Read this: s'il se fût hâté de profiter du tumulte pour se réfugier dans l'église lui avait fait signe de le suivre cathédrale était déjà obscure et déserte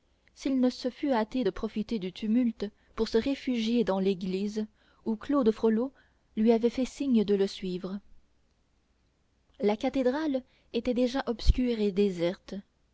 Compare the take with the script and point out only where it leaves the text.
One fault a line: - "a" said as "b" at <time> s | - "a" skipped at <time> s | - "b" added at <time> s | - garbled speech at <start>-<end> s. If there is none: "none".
- "ne" added at 0.6 s
- "où claude frollo" added at 5.0 s
- "la" added at 9.6 s